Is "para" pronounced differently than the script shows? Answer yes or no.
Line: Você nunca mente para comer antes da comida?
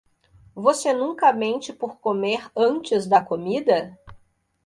yes